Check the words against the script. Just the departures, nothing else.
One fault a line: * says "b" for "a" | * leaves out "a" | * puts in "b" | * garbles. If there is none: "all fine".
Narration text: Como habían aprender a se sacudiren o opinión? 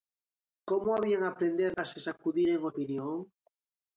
all fine